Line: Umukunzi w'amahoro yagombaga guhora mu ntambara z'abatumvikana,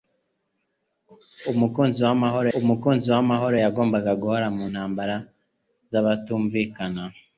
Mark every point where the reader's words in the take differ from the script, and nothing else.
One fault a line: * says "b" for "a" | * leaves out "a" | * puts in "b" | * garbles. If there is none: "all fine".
* puts in "umukunzi w'amahoro"